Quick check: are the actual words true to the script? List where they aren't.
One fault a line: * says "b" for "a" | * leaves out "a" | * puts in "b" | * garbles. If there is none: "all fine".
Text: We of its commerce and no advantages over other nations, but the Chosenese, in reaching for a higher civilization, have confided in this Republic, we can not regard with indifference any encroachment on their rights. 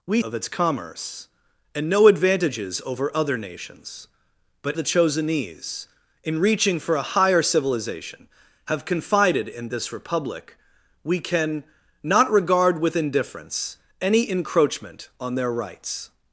all fine